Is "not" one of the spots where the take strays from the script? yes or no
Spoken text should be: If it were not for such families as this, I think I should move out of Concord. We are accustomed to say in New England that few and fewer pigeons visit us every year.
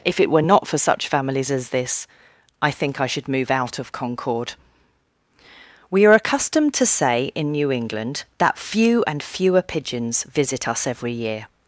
no